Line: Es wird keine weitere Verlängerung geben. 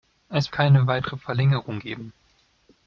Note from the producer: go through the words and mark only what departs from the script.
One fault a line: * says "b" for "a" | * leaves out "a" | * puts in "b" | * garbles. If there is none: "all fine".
* leaves out "wird"